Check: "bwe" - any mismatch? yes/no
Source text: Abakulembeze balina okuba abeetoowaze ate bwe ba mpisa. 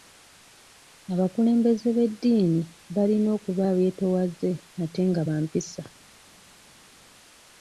yes